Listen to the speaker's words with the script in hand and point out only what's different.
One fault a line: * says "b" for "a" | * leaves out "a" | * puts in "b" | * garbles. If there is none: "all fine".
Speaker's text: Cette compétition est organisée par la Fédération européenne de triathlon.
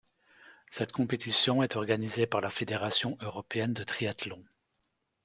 all fine